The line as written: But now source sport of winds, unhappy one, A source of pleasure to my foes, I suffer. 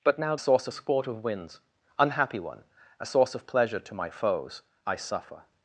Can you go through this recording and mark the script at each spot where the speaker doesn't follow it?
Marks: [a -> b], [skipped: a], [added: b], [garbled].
But now source sport of winds, unhappy one, A source of pleasure to my foes, I suffer.